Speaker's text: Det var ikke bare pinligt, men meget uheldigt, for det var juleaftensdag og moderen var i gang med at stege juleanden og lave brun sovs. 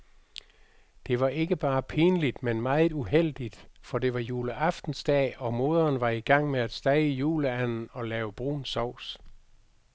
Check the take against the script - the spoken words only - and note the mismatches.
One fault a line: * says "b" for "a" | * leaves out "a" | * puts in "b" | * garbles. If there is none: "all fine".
all fine